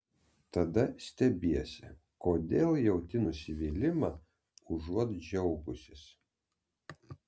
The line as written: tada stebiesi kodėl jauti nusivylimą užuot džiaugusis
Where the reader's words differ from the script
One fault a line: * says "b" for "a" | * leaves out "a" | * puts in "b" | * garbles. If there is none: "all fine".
all fine